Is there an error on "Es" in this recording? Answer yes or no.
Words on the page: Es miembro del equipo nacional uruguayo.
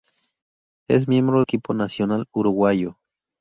no